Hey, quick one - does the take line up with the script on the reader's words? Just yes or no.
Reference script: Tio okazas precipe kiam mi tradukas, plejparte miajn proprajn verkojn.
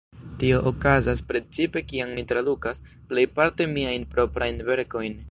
yes